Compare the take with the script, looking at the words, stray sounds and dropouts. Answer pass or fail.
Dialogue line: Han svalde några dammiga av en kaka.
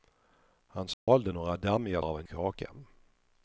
fail